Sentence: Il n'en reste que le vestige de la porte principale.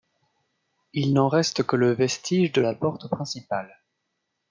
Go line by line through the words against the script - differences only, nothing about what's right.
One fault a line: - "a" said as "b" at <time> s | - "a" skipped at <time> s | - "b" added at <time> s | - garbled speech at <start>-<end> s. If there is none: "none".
none